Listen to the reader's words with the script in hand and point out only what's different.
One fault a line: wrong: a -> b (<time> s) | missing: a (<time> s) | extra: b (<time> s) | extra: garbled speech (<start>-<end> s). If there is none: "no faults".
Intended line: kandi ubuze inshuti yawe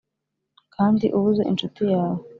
no faults